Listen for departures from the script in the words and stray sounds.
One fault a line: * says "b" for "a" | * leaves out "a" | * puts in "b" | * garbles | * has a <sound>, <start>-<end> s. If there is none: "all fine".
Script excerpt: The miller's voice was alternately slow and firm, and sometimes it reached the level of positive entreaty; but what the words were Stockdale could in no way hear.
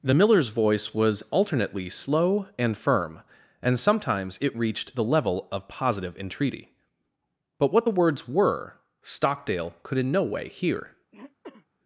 * has a throat clearing, 11.1-11.7 s